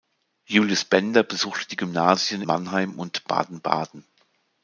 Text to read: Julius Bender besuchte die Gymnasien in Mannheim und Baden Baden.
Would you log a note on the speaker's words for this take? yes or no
yes